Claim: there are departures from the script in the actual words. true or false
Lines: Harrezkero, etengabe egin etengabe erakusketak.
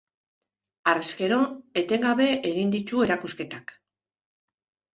true